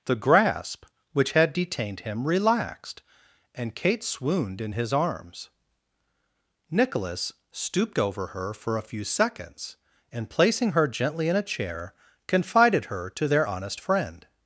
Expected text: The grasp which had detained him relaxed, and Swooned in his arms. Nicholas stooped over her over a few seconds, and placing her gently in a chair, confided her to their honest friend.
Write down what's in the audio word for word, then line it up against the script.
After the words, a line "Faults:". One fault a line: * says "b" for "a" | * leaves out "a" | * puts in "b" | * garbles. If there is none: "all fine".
The grasp which had detained him relaxed, and Kate swooned in his arms. Nicholas stooped over her for a few seconds, and placing her gently in a chair, confided her to their honest friend.
Faults:
* puts in "Kate"
* says "for" for "over"